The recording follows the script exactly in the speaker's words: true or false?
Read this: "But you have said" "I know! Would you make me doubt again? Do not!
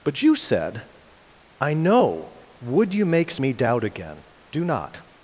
false